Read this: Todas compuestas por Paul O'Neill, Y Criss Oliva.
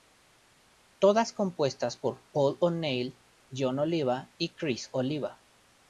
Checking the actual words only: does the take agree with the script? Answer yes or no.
no